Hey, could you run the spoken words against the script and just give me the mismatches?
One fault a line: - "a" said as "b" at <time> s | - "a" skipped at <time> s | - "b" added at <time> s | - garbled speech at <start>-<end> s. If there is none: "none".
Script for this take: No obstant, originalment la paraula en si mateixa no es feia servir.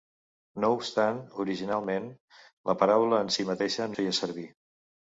- "no" skipped at 3.9 s